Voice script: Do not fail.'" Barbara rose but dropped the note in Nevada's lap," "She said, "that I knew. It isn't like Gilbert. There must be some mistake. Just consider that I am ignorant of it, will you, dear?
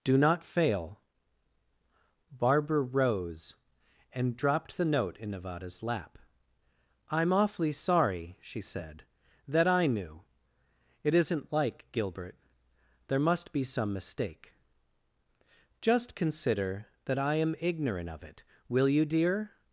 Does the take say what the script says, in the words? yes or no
no